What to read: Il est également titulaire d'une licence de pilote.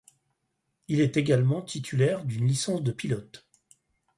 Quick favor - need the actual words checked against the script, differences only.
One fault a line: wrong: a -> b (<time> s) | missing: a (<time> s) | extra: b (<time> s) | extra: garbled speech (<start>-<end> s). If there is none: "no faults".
no faults